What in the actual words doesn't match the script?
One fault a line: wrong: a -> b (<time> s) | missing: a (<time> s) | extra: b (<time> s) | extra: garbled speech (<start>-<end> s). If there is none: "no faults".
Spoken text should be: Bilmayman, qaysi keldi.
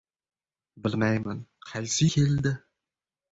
no faults